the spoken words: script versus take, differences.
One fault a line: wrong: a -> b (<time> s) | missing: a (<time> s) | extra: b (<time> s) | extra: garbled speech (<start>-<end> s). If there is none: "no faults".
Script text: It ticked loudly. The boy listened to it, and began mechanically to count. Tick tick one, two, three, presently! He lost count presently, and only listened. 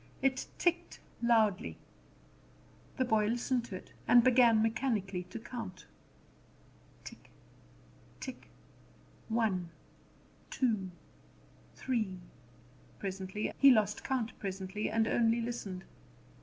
no faults